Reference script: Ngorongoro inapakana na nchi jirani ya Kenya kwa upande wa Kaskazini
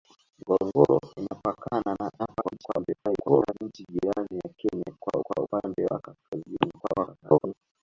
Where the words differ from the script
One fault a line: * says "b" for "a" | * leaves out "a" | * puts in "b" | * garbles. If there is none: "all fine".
* garbles
* puts in "kwa"
* garbles